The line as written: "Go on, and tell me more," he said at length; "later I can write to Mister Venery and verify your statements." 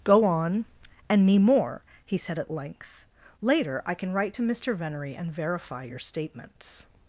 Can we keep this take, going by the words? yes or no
no